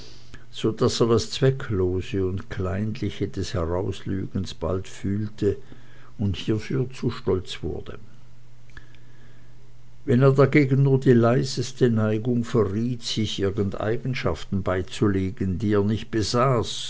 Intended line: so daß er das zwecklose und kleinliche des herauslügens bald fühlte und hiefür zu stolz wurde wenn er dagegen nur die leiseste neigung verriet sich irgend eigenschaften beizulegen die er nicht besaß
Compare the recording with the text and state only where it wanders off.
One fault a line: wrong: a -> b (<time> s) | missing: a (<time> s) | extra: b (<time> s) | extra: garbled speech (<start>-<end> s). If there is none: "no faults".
no faults